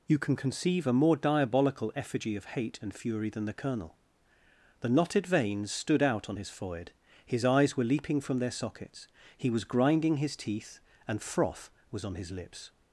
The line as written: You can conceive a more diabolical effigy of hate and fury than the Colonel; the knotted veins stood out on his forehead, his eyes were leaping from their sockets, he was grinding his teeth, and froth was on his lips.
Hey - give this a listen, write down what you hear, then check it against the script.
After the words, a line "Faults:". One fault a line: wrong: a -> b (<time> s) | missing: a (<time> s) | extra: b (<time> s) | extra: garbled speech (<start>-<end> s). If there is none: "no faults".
You can conceive a more diabolical effigy of hate and fury than the Colonel; the knotted veins stood out on his forehead, his eyes were leaping from their sockets, he was grinding his teeth, and froth was on his lips.
Faults:
no faults